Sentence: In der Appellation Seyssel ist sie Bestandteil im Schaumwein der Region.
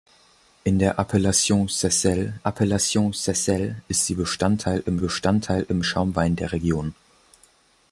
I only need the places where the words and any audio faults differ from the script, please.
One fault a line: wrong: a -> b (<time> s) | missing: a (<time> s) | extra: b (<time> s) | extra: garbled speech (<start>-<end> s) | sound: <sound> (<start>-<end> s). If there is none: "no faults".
extra: Appellation Seyssel (2.4 s)
extra: Bestandteil im (5.0 s)